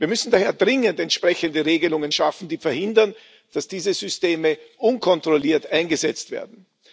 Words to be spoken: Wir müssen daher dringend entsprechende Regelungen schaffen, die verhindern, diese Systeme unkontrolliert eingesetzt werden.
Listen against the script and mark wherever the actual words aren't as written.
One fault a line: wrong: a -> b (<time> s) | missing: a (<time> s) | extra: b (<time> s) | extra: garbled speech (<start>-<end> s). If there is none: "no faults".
extra: dass (3.5 s)